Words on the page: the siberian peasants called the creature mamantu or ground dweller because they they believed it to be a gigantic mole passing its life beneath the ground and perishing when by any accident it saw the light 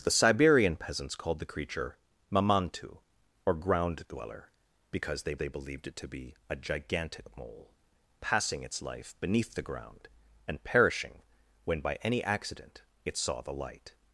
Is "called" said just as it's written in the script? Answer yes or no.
yes